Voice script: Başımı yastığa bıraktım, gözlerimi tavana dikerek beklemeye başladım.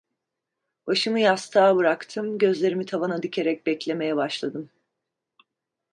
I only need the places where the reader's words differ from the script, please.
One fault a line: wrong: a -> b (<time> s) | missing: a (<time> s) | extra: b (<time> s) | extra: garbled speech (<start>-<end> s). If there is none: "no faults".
no faults